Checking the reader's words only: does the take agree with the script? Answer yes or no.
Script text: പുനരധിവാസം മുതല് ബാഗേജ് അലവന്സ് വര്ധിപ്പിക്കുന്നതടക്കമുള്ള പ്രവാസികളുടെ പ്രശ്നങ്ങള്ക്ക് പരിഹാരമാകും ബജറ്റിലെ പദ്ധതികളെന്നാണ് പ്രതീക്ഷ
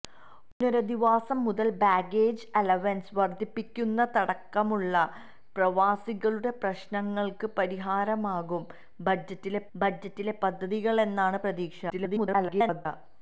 no